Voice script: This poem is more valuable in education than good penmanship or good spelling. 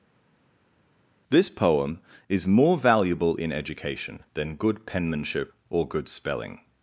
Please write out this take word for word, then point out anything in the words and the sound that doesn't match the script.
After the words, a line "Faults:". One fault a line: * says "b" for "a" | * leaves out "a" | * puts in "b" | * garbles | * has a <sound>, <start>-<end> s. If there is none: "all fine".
This poem is more valuable in education than good penmanship or good spelling.
Faults:
all fine